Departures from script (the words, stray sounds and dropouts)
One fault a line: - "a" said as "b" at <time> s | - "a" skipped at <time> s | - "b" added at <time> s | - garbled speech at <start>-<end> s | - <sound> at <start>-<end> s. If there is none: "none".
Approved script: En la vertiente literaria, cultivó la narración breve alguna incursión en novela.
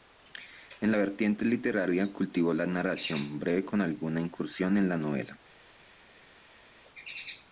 - "con" added at 3.6 s
- "la" added at 4.9 s